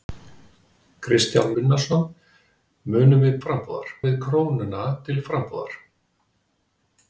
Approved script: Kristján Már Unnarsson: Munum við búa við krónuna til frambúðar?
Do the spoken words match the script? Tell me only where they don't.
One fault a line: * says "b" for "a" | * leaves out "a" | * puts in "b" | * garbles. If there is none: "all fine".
* leaves out "Már"
* says "frambúðar" for "búa"